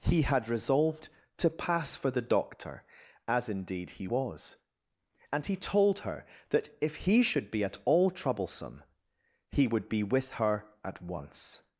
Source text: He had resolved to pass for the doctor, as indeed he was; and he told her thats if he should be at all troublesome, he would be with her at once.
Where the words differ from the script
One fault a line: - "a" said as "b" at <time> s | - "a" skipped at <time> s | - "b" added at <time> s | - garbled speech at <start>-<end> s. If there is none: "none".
- "thats" said as "that" at 6.5 s